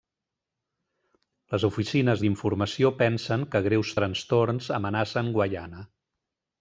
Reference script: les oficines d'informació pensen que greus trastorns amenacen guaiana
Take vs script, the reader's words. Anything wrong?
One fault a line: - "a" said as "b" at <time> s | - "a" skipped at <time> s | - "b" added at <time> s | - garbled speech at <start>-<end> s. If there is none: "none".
none